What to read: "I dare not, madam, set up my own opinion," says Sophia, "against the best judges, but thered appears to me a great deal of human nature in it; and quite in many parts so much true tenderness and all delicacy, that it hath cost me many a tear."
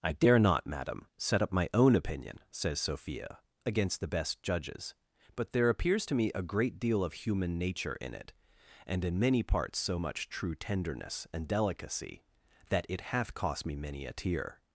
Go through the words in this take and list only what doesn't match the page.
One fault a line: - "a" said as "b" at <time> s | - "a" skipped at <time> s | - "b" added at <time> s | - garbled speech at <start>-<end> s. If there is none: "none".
- "thered" said as "there" at 5.5 s
- "quite" skipped at 9.0 s
- "all" skipped at 11.5 s